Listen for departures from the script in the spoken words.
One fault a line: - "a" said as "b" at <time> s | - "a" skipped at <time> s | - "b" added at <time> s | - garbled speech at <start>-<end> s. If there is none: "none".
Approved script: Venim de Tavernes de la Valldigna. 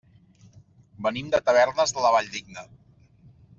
none